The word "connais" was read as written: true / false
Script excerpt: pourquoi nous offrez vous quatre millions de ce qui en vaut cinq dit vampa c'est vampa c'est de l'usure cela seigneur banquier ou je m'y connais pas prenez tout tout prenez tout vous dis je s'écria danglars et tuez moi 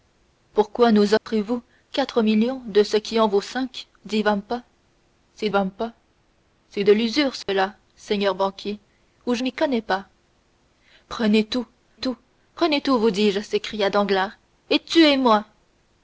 true